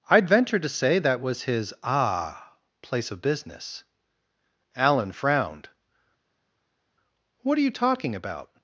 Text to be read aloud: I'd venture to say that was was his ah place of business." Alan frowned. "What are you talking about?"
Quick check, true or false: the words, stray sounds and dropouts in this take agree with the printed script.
false